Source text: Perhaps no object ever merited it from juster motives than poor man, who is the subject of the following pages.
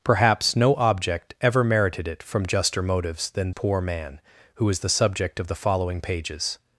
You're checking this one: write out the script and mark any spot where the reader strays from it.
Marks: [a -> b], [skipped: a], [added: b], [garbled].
Perhaps no object ever merited it from juster motives than poor man, who is the subject of the following pages.